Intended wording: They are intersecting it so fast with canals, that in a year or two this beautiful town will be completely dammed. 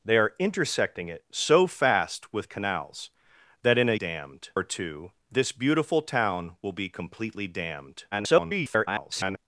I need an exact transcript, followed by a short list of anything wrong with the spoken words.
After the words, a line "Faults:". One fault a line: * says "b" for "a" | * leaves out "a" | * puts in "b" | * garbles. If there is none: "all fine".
They are intersecting it so fast with canals, that in a dammed or two this beautiful town will be completely dammed. [garbled]
Faults:
* says "dammed" for "year"
* garbles